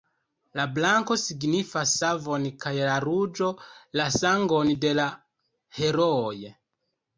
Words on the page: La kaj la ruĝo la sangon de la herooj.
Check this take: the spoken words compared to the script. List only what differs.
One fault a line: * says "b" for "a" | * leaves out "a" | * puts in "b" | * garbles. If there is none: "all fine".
* puts in "blanko signifas savon"